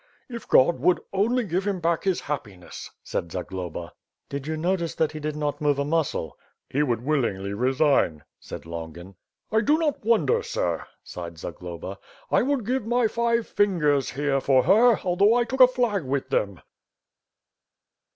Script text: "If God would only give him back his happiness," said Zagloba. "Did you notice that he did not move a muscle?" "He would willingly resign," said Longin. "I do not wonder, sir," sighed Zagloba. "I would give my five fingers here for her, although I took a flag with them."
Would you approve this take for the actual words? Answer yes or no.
yes